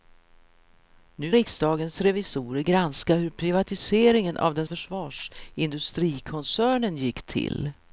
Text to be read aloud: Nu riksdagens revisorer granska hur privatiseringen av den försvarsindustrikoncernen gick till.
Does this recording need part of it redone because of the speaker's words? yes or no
no